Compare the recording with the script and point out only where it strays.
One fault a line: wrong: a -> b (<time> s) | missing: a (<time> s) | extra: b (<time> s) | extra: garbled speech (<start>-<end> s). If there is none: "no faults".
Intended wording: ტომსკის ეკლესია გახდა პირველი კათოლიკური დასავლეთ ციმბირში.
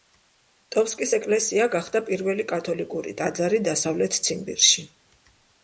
extra: ტაძარი (3.2 s)